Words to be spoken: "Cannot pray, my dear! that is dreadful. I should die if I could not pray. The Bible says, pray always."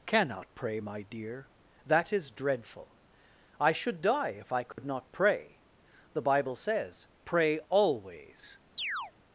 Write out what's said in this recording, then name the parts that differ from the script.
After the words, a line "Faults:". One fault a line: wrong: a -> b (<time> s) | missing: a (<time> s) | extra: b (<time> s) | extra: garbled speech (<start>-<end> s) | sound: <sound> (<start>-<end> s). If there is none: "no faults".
"Cannot pray, my dear! that is dreadful. I should die if I could not pray. The Bible says, pray always."
Faults:
sound: dropout (4.7-4.8 s)
sound: chirp (8.8-9.1 s)